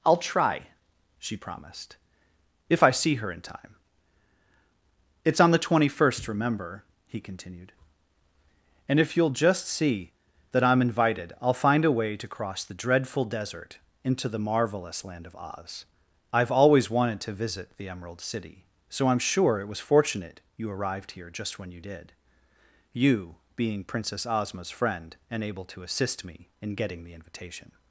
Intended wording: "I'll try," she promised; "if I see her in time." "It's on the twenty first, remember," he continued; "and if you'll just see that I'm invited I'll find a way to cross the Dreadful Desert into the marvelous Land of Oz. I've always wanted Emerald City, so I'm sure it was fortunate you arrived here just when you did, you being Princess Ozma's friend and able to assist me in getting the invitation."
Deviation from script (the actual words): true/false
true